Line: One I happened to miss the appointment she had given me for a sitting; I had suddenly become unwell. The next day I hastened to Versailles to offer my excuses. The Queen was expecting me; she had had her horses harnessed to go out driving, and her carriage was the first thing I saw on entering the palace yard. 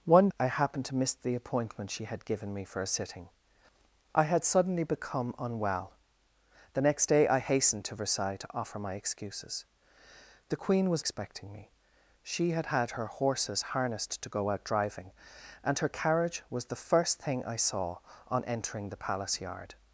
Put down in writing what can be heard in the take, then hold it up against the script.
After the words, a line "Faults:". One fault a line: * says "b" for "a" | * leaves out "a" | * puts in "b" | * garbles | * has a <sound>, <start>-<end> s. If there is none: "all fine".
One I happened to miss the appointment she had given me for a sitting; I had suddenly become unwell. The next day I hastened to Versailles to offer my excuses. The Queen was expecting me; she had had her horses harnessed to go out driving, and her carriage was the first thing I saw on entering the palace yard.
Faults:
all fine